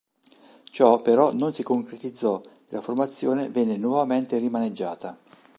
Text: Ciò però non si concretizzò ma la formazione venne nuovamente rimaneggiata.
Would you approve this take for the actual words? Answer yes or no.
no